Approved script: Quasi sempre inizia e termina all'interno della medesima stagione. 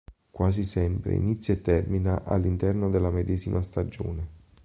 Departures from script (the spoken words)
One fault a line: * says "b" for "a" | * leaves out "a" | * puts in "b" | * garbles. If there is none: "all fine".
all fine